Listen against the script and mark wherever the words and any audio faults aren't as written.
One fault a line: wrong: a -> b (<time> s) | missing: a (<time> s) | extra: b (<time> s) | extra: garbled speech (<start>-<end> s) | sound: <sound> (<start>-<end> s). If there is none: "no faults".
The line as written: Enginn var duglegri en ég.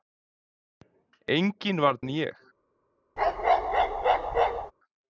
missing: duglegri (1.9 s)
sound: bark (3.2-4.7 s)